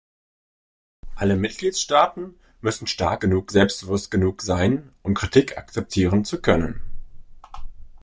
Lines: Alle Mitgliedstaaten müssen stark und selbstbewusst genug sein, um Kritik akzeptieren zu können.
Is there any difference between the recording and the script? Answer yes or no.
yes